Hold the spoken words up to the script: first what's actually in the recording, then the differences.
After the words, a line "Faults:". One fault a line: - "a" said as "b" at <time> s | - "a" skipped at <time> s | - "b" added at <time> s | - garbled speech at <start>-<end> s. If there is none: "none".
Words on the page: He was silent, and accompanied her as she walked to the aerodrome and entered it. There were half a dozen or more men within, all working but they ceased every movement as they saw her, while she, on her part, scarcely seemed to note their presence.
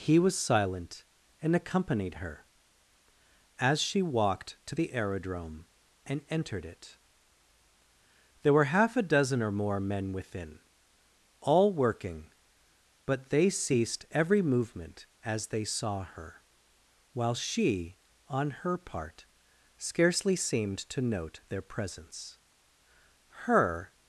He was silent, and accompanied her as she walked to the aerodrome and entered it. There were half a dozen or more men within, all working but they ceased every movement as they saw her, while she, on her part, scarcely seemed to note their presence. Her
Faults:
- "Her" added at 23.4 s